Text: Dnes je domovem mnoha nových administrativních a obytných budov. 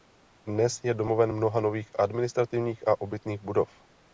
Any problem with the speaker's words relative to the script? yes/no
no